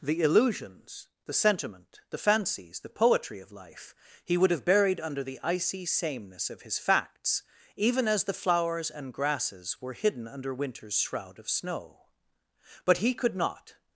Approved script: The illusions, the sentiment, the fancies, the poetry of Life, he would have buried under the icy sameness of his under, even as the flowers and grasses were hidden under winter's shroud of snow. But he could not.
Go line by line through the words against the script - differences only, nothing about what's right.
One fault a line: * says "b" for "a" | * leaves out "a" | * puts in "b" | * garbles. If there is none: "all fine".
* says "facts" for "under"